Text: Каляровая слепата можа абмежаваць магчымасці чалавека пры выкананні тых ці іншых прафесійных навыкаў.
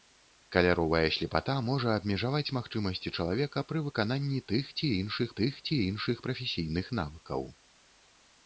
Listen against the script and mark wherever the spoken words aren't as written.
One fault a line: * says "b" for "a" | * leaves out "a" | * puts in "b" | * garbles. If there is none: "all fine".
* puts in "тых ці іншых"